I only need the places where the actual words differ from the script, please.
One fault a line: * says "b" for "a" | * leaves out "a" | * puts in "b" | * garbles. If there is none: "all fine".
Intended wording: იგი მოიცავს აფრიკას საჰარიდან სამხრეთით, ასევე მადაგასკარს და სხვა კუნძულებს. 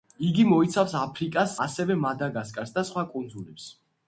* leaves out "საჰარიდან სამხრეთით"